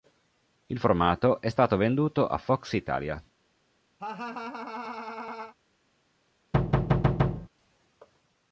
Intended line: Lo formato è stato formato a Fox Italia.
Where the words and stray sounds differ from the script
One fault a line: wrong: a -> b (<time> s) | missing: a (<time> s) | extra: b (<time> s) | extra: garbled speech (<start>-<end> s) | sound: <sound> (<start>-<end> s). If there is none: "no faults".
wrong: Lo -> Il (0.7 s)
wrong: formato -> venduto (1.8 s)
sound: laugh (4.0-5.5 s)
sound: thud (6.5-7.5 s)